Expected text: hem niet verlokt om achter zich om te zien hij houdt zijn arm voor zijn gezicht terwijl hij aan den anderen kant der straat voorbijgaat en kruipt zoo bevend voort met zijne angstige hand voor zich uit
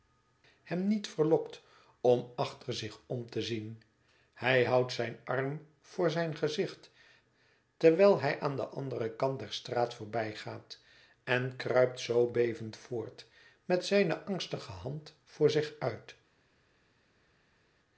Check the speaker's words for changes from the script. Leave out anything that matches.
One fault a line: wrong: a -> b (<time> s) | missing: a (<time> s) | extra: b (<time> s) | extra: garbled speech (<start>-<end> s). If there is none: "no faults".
no faults